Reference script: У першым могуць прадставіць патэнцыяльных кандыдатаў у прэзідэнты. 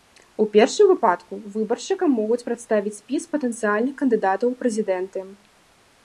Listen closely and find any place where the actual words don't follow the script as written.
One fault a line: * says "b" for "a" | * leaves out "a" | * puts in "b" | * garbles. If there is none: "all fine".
* puts in "выпадку выбаршчыкам"
* puts in "спіс"